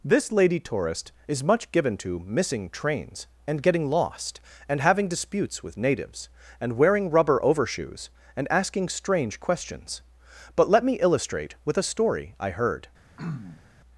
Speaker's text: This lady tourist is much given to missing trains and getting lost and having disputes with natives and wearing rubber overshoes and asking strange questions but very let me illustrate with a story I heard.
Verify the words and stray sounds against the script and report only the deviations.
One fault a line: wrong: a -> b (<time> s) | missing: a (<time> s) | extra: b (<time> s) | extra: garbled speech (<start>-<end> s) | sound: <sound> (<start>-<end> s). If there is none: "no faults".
missing: very (10.7 s)
sound: throat clearing (13.2-13.6 s)